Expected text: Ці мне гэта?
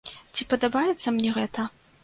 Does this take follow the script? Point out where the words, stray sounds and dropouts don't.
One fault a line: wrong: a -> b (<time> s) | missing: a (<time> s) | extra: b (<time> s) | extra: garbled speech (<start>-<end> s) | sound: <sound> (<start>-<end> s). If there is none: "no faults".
extra: падабаецца (0.5 s)